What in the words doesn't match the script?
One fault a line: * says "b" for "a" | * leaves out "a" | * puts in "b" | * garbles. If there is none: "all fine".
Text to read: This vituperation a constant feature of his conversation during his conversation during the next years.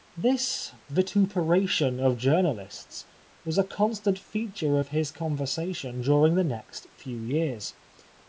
* puts in "of journalists was"
* leaves out "his conversation during"
* puts in "few"